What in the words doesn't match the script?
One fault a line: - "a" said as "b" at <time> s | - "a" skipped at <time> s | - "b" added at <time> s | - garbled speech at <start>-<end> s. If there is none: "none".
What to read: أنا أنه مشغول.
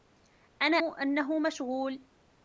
none